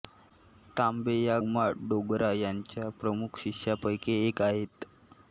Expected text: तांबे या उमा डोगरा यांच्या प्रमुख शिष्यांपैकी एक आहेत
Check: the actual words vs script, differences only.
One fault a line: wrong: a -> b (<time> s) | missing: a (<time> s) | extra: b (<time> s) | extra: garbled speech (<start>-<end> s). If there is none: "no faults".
no faults